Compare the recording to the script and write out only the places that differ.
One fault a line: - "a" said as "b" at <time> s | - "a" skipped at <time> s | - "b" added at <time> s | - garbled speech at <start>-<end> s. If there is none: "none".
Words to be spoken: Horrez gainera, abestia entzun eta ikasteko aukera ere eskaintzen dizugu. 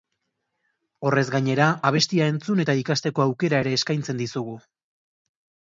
none